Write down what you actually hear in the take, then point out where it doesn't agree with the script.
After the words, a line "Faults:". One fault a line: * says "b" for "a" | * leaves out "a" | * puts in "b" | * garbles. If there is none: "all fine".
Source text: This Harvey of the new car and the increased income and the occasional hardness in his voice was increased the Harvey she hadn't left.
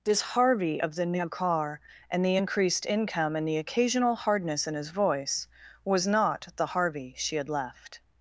This Harvey of the new car and the increased income and the occasional hardness in his voice was not the Harvey she had left.
Faults:
* says "not" for "increased"
* says "had" for "hadn't"